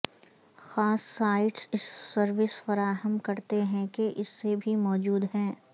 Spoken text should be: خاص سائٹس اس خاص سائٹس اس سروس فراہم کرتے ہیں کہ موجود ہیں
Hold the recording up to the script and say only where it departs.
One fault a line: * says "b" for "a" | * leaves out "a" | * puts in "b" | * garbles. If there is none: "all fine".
* leaves out "خاص سائٹس اس"
* puts in "اس سے بھی"